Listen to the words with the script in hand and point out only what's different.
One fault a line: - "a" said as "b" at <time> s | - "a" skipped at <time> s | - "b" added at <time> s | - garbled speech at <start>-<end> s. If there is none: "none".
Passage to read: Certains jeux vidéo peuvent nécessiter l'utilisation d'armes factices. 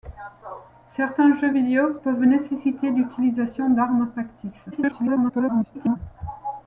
- garbled speech at 4.7-6.0 s